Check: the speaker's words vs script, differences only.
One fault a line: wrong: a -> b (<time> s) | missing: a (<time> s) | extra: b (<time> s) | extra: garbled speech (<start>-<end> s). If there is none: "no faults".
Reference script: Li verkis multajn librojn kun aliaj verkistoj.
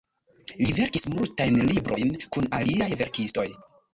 no faults